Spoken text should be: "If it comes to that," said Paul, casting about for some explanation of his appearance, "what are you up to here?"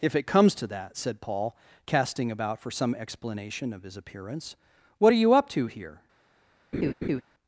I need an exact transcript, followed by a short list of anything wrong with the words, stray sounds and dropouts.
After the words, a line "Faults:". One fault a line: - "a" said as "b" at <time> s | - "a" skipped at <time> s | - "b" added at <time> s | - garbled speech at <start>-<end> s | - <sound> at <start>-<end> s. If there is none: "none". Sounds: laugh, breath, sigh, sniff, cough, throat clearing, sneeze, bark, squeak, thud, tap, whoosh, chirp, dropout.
"If it comes to that," said Paul, casting about for some explanation of his appearance, "what are you up to here?"
Faults:
- laugh at 6.7-7.2 s